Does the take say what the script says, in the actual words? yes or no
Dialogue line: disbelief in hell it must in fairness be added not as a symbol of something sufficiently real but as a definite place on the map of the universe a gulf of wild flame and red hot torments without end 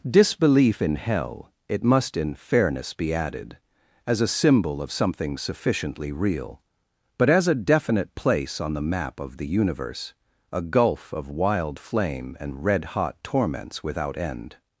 no